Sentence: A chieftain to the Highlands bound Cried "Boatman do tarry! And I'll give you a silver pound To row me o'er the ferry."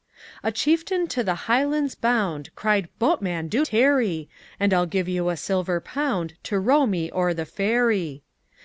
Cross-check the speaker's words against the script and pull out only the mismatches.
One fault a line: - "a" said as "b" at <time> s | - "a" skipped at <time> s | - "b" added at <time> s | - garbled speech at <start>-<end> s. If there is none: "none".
none